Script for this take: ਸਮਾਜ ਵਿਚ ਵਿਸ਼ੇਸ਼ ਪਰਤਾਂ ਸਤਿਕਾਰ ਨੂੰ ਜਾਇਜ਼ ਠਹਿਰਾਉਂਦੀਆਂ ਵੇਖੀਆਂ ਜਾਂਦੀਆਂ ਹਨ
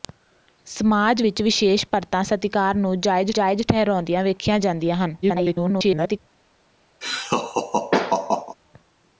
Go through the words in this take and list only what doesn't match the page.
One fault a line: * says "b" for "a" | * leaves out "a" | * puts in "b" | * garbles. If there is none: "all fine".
* puts in "ਜਾਇਜ਼"
* garbles